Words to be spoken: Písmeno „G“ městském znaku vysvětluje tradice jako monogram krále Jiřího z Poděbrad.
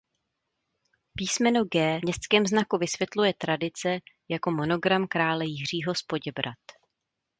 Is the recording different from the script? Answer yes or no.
no